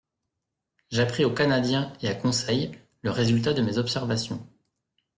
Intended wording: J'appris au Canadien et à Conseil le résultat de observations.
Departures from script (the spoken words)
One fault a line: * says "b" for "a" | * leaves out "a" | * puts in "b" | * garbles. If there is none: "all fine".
* puts in "mes"